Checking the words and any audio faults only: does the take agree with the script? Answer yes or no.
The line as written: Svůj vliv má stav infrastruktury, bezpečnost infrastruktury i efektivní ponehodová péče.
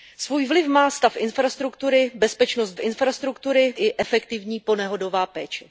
yes